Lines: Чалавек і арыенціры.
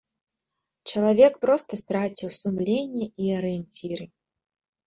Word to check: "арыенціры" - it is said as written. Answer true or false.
true